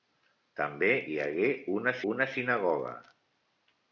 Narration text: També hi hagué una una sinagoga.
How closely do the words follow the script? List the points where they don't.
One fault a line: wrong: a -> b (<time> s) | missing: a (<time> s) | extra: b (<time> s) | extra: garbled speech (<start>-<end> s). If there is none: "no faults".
no faults